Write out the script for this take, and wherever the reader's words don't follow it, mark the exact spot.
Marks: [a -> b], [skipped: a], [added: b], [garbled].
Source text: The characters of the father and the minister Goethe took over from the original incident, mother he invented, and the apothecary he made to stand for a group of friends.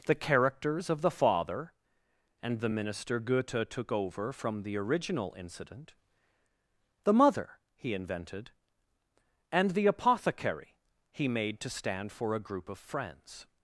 The characters of the father and the minister Goethe took over from the original incident, [added: the] mother he invented, and the apothecary he made to stand for a group of friends.